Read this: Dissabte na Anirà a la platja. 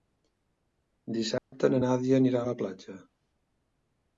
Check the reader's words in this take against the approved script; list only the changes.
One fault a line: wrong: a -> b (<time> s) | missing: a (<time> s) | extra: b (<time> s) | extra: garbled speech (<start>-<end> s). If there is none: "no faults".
extra: Nàdia (1.8 s)